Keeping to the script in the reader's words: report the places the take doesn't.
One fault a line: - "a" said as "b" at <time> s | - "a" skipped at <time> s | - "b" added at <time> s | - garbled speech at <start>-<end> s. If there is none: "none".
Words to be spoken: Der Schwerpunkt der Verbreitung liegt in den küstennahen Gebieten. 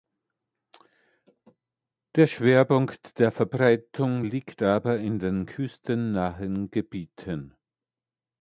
- "aber" added at 4.6 s